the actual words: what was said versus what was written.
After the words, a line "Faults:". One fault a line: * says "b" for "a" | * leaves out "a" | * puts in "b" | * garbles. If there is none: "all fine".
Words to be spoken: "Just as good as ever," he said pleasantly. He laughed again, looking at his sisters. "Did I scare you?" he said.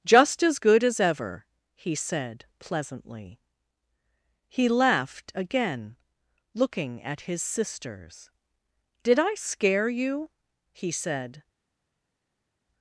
"Just as good as ever," he said pleasantly. He laughed again, looking at his sisters. "Did I scare you?" he said.
Faults:
all fine